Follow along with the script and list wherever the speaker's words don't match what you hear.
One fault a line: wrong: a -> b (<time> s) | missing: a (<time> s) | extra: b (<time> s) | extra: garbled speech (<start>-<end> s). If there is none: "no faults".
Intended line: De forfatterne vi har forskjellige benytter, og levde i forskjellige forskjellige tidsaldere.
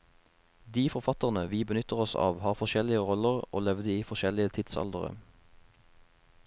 extra: benytter oss av (1.7 s)
wrong: benytter -> roller (3.1 s)
missing: forskjellige (4.5 s)